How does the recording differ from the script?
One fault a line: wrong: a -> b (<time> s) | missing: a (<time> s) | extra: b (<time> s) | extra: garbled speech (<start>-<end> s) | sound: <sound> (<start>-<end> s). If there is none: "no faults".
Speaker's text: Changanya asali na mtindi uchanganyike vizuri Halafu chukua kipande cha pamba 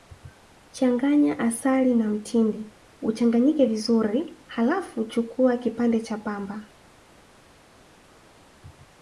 no faults